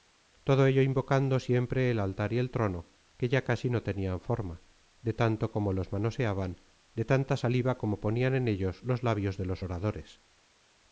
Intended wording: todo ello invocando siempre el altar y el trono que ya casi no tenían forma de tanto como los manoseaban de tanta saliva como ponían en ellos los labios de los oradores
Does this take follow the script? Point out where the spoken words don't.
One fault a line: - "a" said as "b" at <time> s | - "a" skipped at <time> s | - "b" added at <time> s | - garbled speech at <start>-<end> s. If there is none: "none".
none